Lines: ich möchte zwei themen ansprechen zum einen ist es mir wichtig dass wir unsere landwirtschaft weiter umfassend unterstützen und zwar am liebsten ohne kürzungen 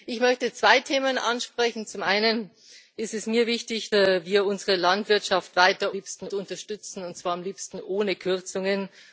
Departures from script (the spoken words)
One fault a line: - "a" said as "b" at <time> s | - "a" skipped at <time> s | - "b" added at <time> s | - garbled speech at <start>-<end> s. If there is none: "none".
- "dass" skipped at 3.9 s
- "umfassend" said as "liebsten" at 5.9 s